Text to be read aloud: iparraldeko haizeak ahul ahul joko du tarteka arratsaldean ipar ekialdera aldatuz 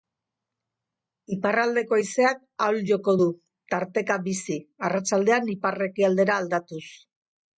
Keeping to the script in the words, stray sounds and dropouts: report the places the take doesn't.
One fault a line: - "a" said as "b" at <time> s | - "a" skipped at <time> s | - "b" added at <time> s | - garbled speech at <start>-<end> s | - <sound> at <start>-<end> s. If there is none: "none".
- "ahul" skipped at 2.8 s
- "bizi" added at 4.3 s